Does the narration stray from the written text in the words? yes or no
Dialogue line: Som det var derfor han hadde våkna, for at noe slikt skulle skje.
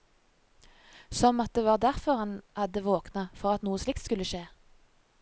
yes